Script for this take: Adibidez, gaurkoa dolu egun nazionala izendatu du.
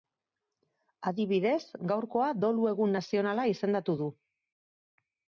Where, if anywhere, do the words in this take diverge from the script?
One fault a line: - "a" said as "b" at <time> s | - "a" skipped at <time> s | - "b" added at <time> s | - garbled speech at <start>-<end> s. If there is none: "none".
none